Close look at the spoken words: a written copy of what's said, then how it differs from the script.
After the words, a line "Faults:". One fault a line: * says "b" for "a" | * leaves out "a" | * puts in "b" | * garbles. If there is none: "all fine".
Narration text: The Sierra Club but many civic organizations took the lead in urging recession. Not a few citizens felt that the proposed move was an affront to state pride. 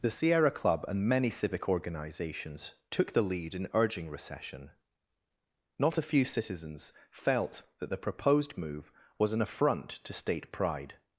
The Sierra Club and many civic organizations took the lead in urging recession. Not a few citizens felt that the proposed move was an affront to state pride.
Faults:
* says "and" for "but"